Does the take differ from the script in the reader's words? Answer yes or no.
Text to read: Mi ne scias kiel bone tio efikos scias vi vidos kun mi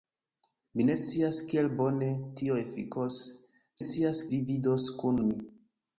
no